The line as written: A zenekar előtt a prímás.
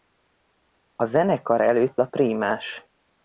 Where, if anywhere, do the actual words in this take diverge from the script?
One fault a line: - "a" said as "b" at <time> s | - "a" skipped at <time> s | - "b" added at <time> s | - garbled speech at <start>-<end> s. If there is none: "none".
none